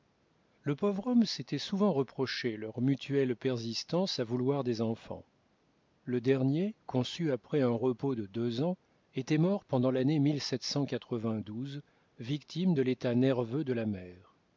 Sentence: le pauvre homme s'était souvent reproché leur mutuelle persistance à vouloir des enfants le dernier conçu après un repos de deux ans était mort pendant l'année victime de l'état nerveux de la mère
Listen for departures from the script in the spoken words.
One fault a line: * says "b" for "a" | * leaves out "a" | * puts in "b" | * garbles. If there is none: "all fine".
all fine